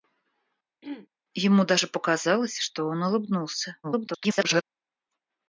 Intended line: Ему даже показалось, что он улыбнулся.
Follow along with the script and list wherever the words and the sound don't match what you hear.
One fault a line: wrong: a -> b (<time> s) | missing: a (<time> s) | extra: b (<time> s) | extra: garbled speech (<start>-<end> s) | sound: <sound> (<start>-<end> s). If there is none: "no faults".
sound: throat clearing (0.8-1.1 s)
extra: garbled speech (3.8-4.6 s)